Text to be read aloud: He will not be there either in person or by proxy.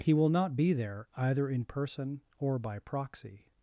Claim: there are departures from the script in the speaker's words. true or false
false